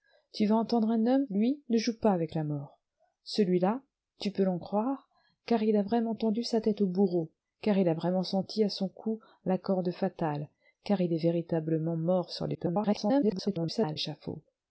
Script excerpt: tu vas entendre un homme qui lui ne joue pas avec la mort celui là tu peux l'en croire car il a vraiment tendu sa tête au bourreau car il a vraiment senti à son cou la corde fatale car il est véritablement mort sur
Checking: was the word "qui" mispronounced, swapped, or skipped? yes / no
yes